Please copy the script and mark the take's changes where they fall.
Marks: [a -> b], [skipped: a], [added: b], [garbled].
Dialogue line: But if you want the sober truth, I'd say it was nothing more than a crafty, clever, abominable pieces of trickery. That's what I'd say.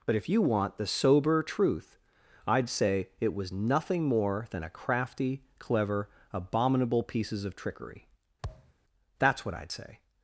But if you want the sober truth, I'd say it was nothing more than a crafty, clever, abominable pieces of trickery. That's what I'd say.